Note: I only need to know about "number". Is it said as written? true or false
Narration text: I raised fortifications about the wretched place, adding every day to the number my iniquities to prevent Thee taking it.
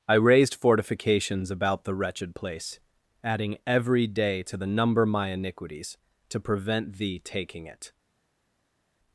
true